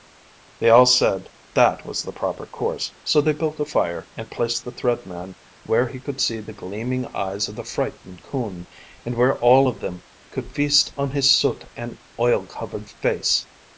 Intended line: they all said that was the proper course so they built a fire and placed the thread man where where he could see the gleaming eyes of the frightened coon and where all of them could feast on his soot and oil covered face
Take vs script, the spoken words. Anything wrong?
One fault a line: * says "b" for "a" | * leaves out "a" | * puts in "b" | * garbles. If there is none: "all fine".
* leaves out "where"